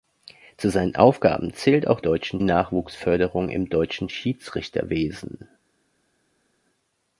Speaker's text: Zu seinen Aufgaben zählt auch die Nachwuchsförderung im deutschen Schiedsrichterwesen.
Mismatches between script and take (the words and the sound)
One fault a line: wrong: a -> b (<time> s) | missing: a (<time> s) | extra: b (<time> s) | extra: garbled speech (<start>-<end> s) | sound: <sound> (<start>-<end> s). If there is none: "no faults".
wrong: die -> deutschen (2.0 s)